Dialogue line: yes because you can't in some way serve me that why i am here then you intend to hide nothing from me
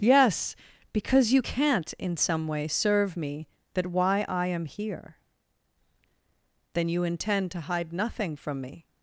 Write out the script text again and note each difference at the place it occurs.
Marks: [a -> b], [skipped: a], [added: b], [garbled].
yes because you can't in some way serve me that why i am here then you intend to hide nothing from me